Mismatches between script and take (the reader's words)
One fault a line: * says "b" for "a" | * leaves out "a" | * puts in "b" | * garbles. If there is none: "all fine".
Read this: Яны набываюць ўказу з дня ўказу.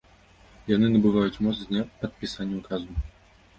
* says "моц" for "ўказу"
* puts in "падпісання"